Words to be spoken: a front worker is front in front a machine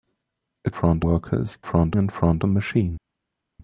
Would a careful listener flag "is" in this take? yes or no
no